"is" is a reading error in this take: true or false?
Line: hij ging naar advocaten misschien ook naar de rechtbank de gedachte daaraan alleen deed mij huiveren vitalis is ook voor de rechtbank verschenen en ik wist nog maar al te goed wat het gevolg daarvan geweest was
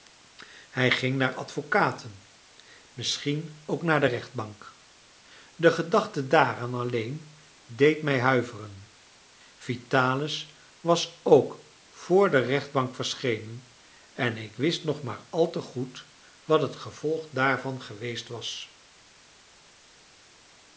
true